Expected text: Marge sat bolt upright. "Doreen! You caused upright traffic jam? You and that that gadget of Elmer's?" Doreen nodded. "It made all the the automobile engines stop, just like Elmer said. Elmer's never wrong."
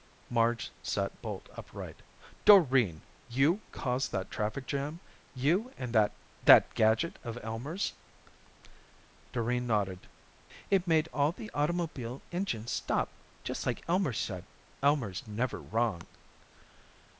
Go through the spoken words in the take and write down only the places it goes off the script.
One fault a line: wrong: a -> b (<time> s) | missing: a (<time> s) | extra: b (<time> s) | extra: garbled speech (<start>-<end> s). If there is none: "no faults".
wrong: upright -> that (4.1 s)
missing: the (11.5 s)